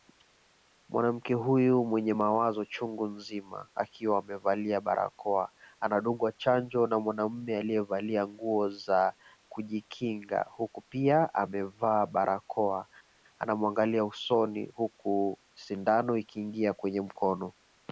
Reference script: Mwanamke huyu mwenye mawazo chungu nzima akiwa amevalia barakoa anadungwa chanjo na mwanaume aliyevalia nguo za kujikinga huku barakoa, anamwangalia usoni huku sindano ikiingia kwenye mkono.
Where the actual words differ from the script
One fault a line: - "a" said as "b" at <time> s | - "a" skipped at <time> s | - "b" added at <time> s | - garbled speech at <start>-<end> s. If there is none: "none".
- "pia amevaa" added at 10.8 s